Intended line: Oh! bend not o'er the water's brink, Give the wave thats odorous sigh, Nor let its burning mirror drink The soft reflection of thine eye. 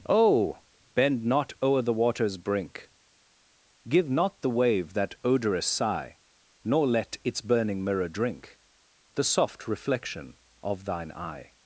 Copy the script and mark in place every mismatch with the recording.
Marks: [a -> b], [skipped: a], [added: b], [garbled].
Oh! bend not o'er the water's brink, Give [added: not] the wave [thats -> that] odorous sigh, Nor let its burning mirror drink The soft reflection of thine eye.